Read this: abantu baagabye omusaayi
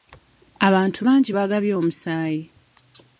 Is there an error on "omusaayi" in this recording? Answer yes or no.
no